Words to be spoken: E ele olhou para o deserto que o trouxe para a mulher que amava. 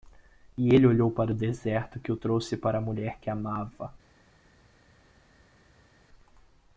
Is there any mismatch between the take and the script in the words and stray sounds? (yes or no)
no